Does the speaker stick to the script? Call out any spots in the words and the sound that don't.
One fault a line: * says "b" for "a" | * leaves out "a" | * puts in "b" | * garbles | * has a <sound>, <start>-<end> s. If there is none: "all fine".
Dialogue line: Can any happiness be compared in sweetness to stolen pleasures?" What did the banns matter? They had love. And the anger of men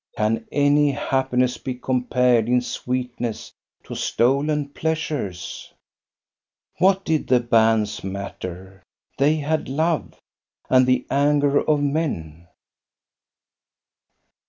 all fine